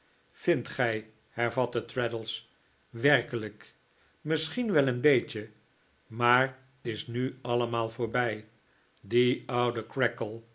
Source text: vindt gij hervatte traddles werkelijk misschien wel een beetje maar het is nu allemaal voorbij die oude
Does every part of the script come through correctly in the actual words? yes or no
no